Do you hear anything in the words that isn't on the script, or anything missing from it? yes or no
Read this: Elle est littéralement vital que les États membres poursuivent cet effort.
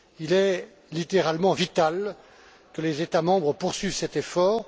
yes